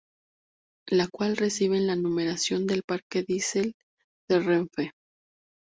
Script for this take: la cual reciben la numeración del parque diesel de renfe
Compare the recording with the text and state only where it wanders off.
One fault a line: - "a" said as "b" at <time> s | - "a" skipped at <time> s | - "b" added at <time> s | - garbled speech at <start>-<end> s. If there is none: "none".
none